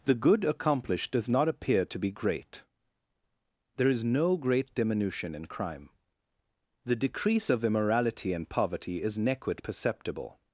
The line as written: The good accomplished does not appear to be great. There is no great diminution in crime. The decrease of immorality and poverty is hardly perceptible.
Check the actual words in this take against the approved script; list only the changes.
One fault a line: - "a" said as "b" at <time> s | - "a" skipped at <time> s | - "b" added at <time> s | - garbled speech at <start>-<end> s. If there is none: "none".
- "hardly" said as "nequit" at 9.2 s